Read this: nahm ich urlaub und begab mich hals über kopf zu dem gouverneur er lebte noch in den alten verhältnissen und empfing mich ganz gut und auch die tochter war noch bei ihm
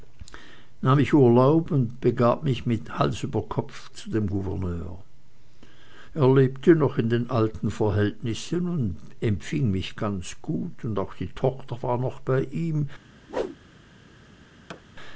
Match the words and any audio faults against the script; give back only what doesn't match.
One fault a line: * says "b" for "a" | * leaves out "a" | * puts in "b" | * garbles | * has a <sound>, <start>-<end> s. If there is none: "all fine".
* has a whoosh, 13.3-13.6 s
* has a thud, 14.7-14.8 s